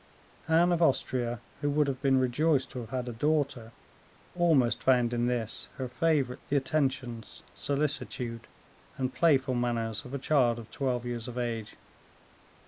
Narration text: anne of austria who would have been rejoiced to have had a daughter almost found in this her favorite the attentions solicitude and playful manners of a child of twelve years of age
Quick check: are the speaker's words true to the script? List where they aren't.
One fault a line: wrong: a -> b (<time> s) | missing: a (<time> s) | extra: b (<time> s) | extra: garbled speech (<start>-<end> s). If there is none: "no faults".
no faults